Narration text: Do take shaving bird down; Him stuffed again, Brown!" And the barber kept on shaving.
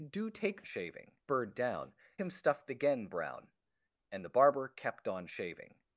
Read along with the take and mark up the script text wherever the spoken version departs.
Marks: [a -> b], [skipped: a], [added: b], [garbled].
Do take shaving bird down; Him stuffed again, Brown!" And the barber kept on shaving.